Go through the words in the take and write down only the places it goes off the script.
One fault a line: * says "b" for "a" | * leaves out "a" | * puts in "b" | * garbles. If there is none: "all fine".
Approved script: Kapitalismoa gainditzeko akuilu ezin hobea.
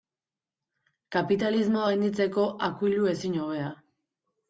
all fine